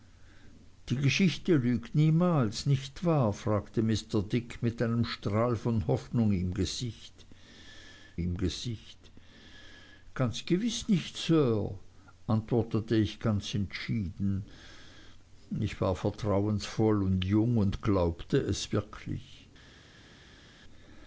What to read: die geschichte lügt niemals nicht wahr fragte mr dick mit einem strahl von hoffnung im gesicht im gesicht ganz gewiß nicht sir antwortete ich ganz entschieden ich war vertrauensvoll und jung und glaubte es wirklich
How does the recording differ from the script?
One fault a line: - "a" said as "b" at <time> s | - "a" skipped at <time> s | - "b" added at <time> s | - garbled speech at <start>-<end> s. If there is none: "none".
none